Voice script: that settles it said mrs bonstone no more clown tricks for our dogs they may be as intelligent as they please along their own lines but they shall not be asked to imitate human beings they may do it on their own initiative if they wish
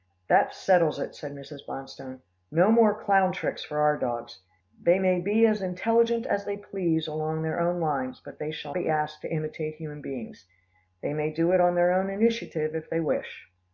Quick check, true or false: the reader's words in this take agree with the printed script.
false